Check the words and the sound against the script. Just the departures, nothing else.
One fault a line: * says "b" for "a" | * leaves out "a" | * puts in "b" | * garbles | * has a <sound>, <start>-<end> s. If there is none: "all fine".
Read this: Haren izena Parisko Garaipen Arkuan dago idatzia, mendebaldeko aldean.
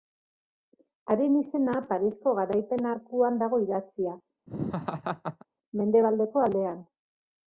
* has a laugh, 4.5-5.5 s